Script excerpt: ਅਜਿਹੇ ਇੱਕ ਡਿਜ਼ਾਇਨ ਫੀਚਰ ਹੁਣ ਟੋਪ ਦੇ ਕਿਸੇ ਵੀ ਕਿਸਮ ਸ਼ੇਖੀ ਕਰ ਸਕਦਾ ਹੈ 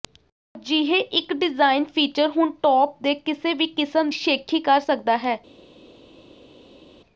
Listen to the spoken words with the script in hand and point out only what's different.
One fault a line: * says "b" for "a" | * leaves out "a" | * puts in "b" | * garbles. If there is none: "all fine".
all fine